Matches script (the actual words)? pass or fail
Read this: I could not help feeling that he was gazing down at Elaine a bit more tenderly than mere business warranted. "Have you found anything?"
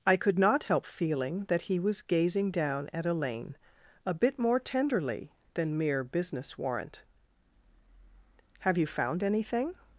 fail